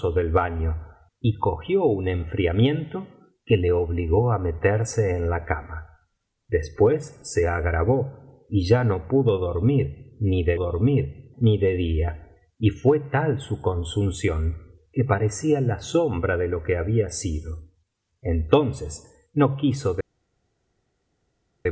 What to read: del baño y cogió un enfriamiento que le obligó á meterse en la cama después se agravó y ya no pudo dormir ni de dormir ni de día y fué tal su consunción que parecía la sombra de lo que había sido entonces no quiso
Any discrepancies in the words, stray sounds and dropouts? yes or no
no